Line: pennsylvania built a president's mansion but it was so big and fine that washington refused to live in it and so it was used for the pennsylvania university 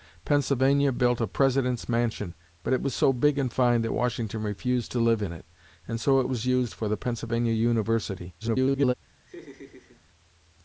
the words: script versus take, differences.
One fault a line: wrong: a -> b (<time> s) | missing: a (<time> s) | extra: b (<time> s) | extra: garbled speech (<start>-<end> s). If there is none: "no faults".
extra: garbled speech (8.4-8.9 s)